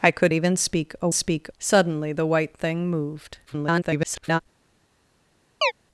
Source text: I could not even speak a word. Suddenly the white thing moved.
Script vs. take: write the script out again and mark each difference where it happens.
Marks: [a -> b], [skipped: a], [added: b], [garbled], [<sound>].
I could [skipped: not] even speak a [word. -> speak] Suddenly the white thing moved. [garbled] [chirp]